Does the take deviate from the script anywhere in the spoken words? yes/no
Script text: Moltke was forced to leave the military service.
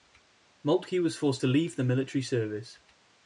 no